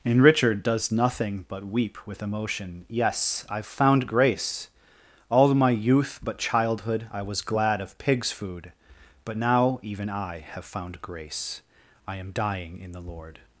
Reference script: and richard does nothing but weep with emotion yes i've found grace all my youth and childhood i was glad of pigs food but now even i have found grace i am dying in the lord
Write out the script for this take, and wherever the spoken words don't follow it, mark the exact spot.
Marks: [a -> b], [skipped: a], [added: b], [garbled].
and richard does nothing but weep with emotion yes i've found grace all my youth [and -> but] childhood i was glad of pigs food but now even i have found grace i am dying in the lord